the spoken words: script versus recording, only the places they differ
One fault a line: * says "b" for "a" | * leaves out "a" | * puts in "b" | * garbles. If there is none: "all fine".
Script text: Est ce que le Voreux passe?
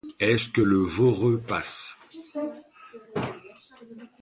all fine